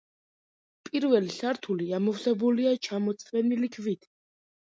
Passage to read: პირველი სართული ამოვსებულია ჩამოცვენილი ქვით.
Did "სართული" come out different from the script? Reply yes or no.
no